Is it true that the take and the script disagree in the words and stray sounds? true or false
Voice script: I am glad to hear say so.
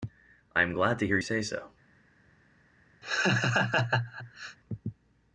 true